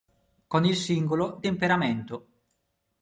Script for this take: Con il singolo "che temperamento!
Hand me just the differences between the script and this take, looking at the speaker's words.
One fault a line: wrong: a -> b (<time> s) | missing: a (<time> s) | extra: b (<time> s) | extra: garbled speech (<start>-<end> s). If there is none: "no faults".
missing: che (1.4 s)